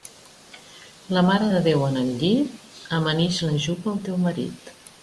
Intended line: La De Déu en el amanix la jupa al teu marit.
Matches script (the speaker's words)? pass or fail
fail